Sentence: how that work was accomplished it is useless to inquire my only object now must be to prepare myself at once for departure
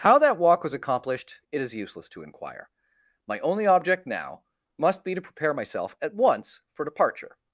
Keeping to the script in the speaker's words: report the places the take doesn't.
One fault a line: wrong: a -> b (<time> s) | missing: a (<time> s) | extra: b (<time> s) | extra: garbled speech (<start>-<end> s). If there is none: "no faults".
wrong: work -> walk (0.4 s)